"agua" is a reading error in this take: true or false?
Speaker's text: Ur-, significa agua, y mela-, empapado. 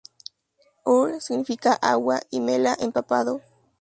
false